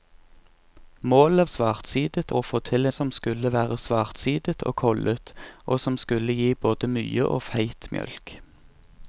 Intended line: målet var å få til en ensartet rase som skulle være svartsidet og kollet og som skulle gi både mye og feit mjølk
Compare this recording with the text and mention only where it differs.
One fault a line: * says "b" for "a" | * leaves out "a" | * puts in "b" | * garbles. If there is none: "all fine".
* says "svartsidet" for "var"
* leaves out "en ensartet rase"